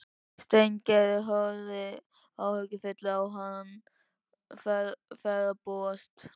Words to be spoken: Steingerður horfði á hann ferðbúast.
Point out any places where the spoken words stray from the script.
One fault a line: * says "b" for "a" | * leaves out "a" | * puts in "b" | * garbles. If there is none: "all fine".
* puts in "áhyggjufull"